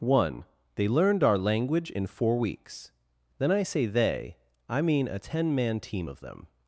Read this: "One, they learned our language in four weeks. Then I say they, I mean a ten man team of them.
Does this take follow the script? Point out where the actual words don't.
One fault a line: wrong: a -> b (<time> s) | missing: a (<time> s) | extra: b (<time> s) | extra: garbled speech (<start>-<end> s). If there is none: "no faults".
no faults